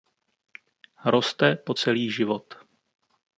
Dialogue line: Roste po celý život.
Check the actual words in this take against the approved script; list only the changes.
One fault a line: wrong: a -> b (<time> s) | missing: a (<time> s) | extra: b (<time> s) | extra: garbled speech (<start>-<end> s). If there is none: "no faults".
no faults